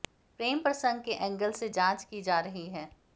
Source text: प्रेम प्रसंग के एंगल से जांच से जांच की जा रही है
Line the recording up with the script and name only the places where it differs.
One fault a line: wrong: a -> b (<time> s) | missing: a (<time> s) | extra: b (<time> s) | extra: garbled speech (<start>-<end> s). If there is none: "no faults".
missing: से जांच (2.0 s)